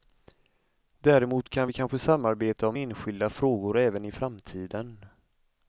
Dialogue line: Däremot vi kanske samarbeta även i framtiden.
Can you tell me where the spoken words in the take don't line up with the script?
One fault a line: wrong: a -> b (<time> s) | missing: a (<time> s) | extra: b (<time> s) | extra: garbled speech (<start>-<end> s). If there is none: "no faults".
extra: kan (1.5 s)
extra: om enskilda frågor (2.7 s)